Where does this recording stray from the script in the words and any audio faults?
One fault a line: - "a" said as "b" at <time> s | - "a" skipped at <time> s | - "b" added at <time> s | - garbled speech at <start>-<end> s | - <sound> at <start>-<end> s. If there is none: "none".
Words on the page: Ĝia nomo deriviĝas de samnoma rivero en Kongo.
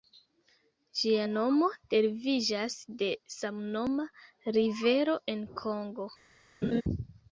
- laugh at 6.6-6.8 s